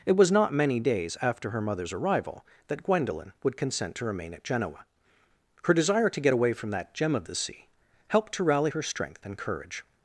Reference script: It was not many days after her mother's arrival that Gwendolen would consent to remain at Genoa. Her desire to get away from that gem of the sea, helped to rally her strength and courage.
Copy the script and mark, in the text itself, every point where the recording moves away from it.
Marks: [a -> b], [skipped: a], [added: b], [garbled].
It was not many days after her mother's arrival that Gwendolen would consent to remain at Genoa. Her desire to get away from that gem of the sea, helped to rally her strength and courage.